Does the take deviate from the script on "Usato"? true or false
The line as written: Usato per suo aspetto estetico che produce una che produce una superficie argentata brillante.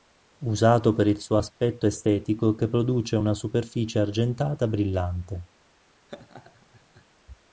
false